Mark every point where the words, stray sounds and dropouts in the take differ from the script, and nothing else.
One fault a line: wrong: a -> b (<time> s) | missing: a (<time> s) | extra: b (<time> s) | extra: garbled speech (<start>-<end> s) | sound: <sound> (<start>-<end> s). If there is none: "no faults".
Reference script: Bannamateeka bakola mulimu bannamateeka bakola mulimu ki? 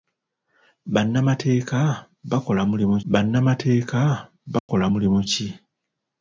sound: dropout (4.6-4.7 s)